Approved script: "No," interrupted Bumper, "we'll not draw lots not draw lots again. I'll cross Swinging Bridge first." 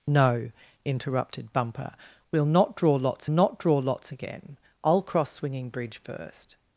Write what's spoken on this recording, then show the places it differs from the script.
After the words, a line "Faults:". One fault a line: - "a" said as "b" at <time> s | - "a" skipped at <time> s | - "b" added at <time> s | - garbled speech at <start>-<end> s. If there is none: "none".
"No," interrupted Bumper, "we'll not draw lots not draw lots again. I'll cross Swinging Bridge first."
Faults:
none